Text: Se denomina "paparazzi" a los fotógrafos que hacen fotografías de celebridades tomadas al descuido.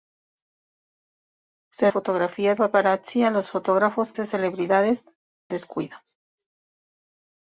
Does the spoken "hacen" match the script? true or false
false